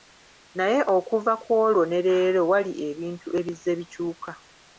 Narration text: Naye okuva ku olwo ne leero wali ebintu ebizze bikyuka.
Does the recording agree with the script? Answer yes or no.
yes